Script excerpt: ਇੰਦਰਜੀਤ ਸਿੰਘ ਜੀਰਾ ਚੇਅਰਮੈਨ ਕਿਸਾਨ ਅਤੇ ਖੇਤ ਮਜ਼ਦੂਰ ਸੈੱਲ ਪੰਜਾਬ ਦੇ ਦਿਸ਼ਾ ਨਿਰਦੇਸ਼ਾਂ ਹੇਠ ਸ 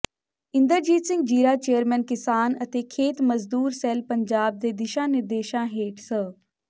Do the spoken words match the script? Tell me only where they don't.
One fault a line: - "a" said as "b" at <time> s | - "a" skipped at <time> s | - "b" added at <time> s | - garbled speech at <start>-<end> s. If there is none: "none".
none